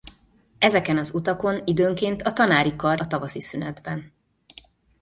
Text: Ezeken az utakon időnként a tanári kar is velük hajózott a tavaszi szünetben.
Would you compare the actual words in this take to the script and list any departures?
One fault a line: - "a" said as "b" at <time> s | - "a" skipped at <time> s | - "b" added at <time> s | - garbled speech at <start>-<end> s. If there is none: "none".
- "is velük hajózott" skipped at 3.0 s